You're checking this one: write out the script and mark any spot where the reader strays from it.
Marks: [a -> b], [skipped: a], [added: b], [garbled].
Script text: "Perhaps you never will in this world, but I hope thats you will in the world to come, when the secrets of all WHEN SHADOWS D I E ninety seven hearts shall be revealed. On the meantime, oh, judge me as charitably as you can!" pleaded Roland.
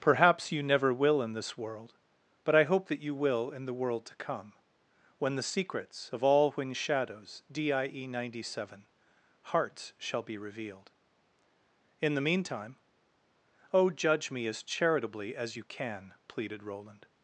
"Perhaps you never will in this world, but I hope [thats -> that] you will in the world to come, when the secrets of all WHEN SHADOWS D I E ninety seven hearts shall be revealed. [On -> In] the meantime, oh, judge me as charitably as you can!" pleaded Roland.